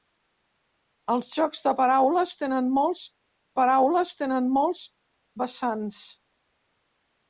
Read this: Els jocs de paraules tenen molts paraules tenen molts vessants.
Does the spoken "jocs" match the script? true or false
true